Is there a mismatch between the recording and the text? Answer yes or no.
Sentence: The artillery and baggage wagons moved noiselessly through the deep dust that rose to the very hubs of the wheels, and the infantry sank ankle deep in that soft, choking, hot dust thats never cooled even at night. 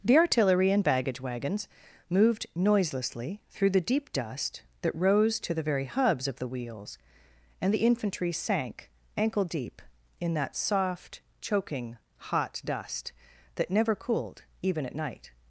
yes